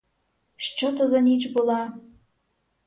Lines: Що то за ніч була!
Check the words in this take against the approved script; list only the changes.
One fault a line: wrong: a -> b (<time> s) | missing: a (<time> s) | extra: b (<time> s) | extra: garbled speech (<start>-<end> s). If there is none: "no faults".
no faults